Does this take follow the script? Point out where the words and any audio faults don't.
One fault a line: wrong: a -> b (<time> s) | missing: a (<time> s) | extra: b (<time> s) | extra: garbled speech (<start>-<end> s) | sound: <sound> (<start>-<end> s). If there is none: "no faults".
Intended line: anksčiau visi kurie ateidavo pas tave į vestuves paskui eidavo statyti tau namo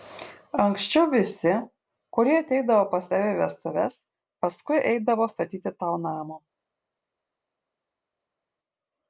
no faults